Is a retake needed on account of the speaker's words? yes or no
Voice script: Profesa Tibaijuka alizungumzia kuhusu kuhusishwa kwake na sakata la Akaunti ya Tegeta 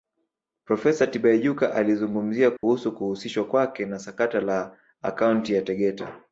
no